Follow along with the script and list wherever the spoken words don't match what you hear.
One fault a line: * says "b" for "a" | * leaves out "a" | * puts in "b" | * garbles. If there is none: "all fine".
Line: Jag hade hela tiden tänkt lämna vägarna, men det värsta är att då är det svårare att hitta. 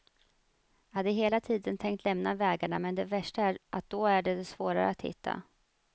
all fine